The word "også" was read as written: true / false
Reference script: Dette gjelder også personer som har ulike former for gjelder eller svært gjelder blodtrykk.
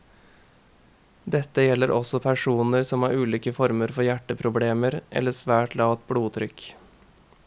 true